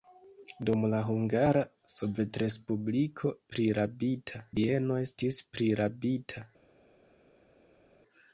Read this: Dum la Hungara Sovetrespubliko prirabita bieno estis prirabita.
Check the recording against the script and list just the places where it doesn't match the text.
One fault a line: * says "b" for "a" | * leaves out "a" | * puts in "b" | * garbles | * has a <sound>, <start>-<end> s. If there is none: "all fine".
all fine